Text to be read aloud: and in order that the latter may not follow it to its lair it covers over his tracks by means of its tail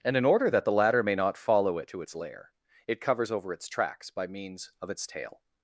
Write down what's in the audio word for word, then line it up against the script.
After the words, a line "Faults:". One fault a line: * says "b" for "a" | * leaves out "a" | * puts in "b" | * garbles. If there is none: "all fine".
and in order that the latter may not follow it to its lair it covers over its tracks by means of its tail
Faults:
* says "its" for "his"